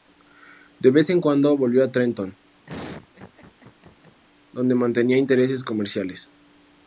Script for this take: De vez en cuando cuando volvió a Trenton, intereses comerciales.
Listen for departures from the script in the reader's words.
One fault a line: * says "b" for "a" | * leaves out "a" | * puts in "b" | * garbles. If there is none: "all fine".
* leaves out "cuando"
* puts in "donde mantenía"